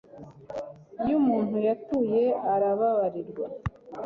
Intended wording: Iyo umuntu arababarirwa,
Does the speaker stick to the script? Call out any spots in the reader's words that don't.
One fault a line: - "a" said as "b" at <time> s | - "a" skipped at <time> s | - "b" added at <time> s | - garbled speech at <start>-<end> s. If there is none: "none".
- "yatuye" added at 1.7 s